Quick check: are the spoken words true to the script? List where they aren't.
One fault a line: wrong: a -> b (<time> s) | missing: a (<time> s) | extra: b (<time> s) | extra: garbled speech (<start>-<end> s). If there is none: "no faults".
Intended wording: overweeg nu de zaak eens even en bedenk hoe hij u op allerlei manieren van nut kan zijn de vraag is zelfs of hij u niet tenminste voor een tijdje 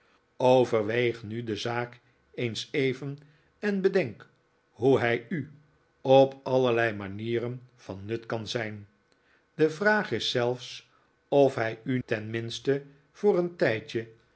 missing: niet (12.0 s)